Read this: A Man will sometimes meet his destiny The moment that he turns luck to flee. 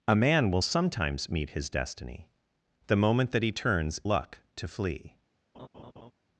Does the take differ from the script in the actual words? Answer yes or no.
no